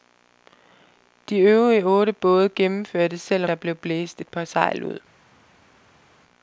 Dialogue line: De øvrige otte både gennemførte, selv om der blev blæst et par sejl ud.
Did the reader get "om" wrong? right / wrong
wrong